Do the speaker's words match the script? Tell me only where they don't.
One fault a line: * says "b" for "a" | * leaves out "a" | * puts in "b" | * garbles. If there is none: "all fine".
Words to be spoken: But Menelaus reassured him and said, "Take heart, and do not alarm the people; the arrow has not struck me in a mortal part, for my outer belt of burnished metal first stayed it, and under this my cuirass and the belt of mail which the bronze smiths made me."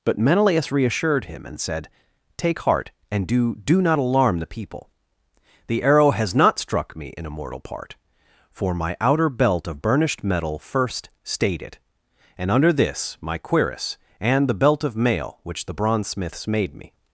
* puts in "do"